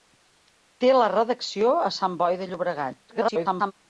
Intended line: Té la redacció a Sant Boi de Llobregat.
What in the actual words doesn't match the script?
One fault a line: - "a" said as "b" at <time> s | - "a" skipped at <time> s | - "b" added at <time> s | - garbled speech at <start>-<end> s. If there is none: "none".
- garbled speech at 3.1-3.7 s